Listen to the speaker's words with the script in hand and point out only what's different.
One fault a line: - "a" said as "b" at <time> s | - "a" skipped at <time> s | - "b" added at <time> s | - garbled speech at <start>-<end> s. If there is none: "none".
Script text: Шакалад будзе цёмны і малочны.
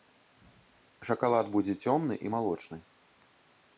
none